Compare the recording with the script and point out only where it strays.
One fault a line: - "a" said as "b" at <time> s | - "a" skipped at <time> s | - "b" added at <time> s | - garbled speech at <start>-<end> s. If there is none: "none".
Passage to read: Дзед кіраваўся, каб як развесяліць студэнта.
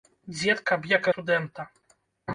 - "кіраваўся" skipped at 0.6 s
- "развесяліць" skipped at 1.1 s